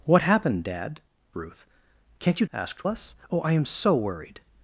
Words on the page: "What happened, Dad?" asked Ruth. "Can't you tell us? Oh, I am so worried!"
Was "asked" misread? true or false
true